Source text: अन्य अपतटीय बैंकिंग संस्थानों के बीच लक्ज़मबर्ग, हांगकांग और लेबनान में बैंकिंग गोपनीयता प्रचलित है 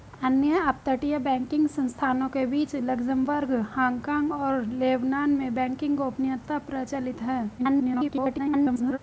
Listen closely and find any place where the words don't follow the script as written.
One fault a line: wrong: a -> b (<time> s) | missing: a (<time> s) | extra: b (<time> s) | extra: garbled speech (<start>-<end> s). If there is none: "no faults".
extra: garbled speech (7.6-9.0 s)